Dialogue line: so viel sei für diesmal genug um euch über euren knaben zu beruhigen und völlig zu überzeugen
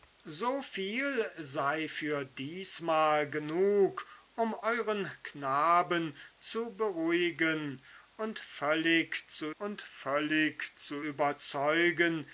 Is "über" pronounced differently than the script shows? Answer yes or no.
yes